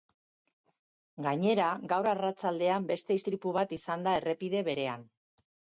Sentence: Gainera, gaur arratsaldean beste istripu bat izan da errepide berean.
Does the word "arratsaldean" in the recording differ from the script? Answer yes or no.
no